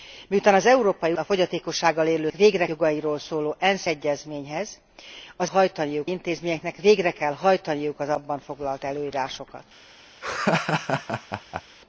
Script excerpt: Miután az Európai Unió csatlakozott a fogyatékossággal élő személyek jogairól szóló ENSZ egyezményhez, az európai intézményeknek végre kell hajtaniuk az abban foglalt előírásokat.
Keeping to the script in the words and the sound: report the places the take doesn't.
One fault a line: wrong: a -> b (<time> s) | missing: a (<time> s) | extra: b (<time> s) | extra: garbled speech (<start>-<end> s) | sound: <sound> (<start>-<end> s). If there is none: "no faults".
missing: Unió csatlakozott (1.1 s)
wrong: személyek -> végre (2.3 s)
wrong: európai -> hajtaniuk (5.4 s)
sound: laugh (10.2-11.6 s)